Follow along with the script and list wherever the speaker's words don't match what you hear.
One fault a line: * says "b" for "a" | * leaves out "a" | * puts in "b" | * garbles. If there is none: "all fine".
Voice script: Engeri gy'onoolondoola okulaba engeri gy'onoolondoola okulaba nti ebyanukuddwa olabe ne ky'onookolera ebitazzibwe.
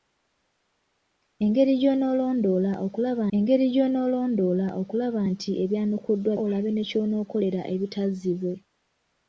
all fine